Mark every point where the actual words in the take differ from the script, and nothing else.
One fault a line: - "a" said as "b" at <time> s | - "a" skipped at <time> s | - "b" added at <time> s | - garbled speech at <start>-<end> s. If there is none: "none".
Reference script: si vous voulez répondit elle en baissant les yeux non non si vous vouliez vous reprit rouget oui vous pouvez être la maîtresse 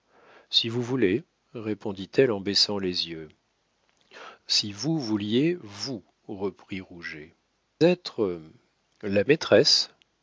- "non non" skipped at 3.3 s
- "oui vous pouvez" skipped at 7.3 s